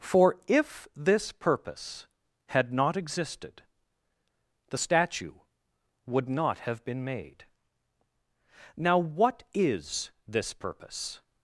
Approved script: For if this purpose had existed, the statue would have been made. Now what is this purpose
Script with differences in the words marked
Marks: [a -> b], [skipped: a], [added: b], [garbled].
For if this purpose had [added: not] existed, the statue would [added: not] have been made. Now what is this purpose